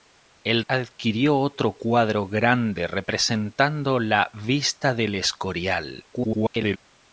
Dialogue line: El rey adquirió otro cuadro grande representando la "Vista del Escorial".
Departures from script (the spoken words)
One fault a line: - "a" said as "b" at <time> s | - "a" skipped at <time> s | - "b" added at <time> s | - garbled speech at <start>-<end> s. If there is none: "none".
- "rey" skipped at 0.6 s
- garbled speech at 6.1-6.8 s